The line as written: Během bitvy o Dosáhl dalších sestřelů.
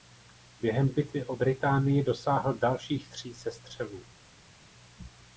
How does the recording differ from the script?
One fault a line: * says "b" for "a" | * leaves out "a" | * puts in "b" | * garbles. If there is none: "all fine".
* puts in "Británii"
* puts in "tří"